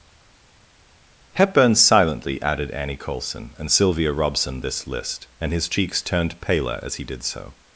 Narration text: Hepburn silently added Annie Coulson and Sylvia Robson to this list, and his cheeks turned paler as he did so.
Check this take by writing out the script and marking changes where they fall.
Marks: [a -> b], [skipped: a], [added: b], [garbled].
Hepburn silently added Annie Coulson and Sylvia Robson [skipped: to] this list, and his cheeks turned paler as he did so.